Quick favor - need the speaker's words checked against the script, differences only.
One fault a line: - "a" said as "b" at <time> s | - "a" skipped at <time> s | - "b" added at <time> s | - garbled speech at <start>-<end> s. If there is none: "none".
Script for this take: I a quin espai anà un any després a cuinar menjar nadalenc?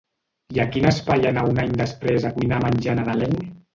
none